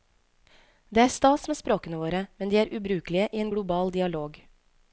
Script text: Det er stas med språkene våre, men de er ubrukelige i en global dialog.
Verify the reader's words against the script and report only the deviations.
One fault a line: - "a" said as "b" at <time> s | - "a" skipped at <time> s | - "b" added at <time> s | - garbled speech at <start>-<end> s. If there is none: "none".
none